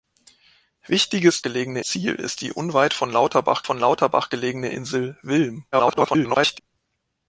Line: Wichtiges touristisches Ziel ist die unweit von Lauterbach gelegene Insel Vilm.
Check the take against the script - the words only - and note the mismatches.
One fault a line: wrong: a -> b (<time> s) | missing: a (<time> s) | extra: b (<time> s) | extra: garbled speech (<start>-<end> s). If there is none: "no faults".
wrong: touristisches -> gelegene (1.4 s)
extra: von Lauterbach (3.6 s)
extra: garbled speech (5.7-6.6 s)